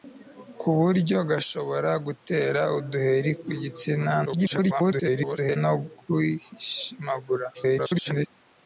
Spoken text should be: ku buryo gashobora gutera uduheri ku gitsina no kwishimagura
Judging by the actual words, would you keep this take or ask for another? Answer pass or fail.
fail